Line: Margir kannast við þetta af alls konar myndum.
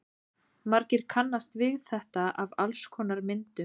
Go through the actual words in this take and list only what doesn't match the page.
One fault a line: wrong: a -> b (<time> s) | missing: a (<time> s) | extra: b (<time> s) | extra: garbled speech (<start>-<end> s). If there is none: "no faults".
no faults